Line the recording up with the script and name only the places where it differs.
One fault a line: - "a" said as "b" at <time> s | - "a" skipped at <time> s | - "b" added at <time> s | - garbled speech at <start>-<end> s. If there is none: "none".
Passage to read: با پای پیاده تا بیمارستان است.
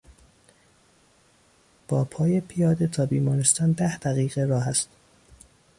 - "ده دقیقه راه" added at 3.7 s